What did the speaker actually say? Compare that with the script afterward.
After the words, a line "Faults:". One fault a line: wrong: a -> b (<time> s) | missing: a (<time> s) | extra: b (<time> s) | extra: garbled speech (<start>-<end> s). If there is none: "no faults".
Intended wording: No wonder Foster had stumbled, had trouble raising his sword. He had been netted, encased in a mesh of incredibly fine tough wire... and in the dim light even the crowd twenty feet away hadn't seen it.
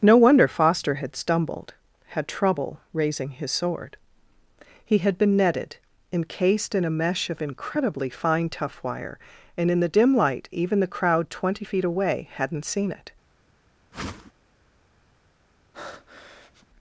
No wonder Foster had stumbled, had trouble raising his sword. He had been netted, encased in a mesh of incredibly fine tough wire... and in the dim light even the crowd twenty feet away hadn't seen it.
Faults:
no faults